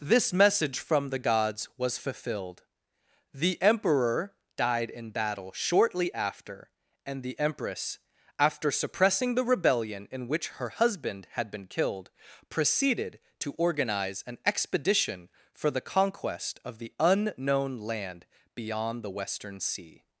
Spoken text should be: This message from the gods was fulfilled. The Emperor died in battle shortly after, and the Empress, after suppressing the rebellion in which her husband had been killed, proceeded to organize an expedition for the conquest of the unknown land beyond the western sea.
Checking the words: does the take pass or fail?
pass